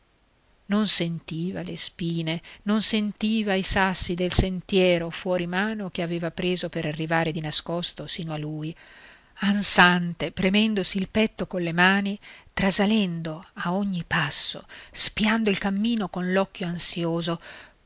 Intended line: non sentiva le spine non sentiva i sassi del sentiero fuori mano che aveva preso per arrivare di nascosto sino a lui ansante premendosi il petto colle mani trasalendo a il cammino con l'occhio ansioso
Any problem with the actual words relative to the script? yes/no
yes